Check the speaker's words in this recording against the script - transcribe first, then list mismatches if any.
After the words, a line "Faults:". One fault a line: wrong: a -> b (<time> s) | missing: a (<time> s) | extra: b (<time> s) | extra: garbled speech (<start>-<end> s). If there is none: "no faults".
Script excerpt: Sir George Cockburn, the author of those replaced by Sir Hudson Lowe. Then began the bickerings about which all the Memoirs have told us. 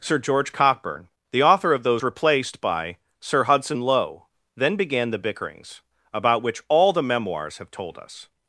Sir George Cockburn, the author of those replaced by Sir Hudson Lowe. Then began the bickerings about which all the Memoirs have told us.
Faults:
no faults